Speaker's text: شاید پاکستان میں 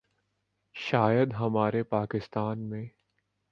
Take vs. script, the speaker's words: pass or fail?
fail